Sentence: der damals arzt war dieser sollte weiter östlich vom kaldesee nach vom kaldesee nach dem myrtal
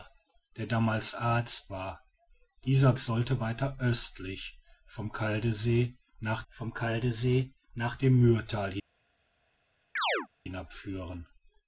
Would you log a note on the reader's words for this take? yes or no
no